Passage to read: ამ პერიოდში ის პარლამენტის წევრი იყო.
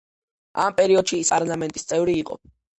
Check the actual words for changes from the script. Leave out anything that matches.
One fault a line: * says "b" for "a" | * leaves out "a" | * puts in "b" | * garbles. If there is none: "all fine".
all fine